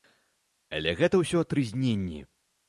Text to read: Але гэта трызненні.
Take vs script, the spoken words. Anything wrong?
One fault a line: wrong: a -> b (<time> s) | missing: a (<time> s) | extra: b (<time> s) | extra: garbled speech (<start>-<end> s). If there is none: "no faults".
extra: ўсё (1.2 s)